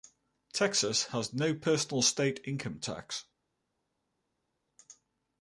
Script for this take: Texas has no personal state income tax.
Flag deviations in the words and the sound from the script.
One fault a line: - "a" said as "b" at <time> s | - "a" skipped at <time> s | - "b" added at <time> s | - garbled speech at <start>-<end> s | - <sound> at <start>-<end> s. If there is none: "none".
none